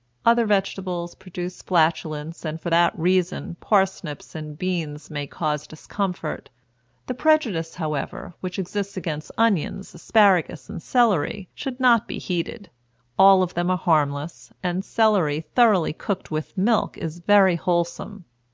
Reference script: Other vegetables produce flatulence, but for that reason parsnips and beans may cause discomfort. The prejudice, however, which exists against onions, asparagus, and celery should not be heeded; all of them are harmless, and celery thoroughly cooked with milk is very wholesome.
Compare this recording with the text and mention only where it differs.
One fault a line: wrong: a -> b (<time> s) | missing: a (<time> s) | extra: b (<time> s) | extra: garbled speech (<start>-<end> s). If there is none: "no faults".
wrong: but -> and (2.4 s)